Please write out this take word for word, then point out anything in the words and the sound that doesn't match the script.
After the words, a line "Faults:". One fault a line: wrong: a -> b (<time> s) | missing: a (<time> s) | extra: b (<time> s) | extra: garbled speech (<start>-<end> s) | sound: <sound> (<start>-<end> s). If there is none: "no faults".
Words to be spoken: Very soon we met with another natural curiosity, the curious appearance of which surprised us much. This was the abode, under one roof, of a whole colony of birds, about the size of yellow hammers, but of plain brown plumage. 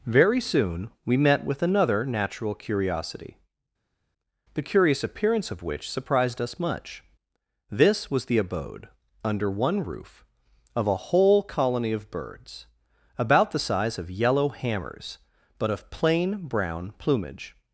Very soon we met with another natural curiosity, the curious appearance of which surprised us much. This was the abode, under one roof, of a whole colony of birds, about the size of yellow hammers, but of plain brown plumage.
Faults:
no faults